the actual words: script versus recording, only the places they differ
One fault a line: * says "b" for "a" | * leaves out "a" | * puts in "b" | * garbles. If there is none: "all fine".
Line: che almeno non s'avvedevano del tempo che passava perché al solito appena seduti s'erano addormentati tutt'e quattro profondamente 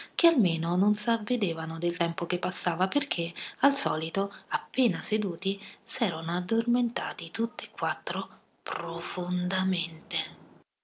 all fine